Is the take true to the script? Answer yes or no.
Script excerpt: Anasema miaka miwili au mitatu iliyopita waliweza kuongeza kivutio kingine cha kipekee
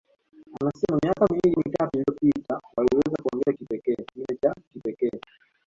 no